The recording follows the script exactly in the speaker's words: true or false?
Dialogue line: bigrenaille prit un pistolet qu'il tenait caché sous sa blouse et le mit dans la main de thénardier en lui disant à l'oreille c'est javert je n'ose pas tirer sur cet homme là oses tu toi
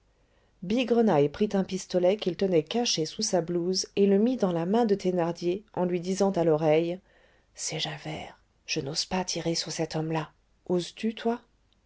true